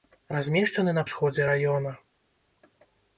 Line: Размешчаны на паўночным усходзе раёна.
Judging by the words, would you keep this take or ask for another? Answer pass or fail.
fail